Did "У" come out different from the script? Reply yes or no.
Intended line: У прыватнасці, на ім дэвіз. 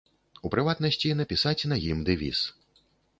no